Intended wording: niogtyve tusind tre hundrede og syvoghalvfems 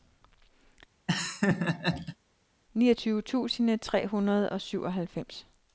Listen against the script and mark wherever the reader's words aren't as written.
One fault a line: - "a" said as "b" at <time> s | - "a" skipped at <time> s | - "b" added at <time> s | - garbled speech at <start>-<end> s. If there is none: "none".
none